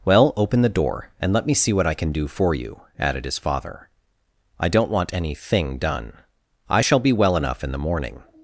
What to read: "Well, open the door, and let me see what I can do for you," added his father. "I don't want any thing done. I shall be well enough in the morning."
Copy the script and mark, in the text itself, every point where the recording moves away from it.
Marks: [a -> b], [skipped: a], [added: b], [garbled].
"Well, open the door, and let me see what I can do for you," added his father. "I don't want any thing done. I shall be well enough in the morning."